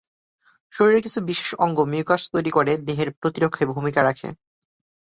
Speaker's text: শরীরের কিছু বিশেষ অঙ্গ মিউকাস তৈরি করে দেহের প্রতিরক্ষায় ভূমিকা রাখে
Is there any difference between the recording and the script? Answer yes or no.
no